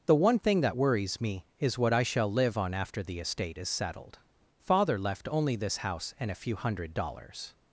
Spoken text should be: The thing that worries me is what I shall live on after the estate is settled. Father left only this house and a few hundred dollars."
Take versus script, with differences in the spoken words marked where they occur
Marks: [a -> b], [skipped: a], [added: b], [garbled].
The [added: one] thing that worries me is what I shall live on after the estate is settled. Father left only this house and a few hundred dollars."